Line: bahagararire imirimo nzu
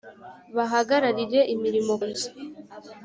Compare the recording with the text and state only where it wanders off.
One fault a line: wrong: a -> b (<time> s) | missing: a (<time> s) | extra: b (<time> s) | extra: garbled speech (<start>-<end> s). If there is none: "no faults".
no faults